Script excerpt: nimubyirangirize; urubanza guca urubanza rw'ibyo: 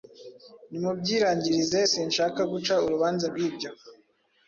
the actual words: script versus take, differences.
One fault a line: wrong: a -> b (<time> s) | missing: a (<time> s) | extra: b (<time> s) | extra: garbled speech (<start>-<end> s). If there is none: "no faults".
wrong: urubanza -> sinshaka (1.9 s)